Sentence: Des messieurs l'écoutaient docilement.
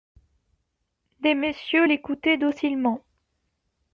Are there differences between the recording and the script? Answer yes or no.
no